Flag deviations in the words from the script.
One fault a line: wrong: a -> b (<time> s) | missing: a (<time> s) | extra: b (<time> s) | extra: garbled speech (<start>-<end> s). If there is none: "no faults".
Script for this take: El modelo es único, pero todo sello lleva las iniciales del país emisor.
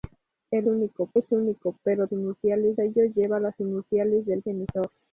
wrong: modelo -> único (0.6 s)
wrong: todo -> iniciales (2.1 s)
missing: país (4.4 s)